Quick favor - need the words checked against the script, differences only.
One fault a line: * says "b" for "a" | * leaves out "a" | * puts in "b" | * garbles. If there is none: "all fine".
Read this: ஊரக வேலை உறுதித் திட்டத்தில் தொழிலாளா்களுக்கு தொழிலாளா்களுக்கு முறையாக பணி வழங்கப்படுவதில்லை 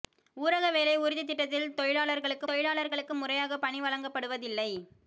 all fine